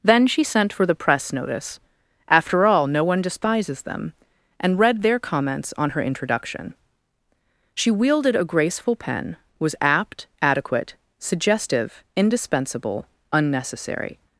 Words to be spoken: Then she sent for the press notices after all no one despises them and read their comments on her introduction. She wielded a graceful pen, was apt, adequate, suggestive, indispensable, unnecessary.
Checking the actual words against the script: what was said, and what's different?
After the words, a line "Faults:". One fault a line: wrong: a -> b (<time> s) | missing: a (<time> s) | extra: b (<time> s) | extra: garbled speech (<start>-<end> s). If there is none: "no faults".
Then she sent for the press notice after all no one despises them and read their comments on her introduction. She wielded a graceful pen, was apt, adequate, suggestive, indispensable, unnecessary.
Faults:
wrong: notices -> notice (1.3 s)